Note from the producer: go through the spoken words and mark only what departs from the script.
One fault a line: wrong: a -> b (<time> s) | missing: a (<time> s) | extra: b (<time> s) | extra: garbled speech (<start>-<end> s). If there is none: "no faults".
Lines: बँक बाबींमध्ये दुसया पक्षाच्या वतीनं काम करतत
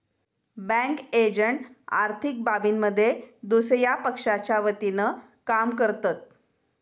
extra: एजंट आर्थिक (1.1 s)